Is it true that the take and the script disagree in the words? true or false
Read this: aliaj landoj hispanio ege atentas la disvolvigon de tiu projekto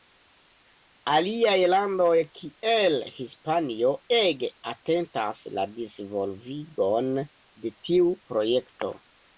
true